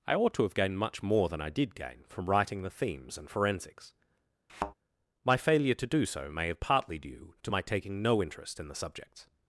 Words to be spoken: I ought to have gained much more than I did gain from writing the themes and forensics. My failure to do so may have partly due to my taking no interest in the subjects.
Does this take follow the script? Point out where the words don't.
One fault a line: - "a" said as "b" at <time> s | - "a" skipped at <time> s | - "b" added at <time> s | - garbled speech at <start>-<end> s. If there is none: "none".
none